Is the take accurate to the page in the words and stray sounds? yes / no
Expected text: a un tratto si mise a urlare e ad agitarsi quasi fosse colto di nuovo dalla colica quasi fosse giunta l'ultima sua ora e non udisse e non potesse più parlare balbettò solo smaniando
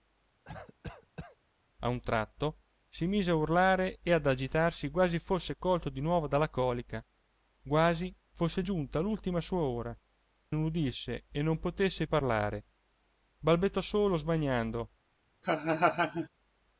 no